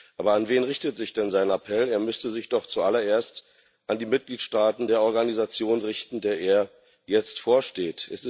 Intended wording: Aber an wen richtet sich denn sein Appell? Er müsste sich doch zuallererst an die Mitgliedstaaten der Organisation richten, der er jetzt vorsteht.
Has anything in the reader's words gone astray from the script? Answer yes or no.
no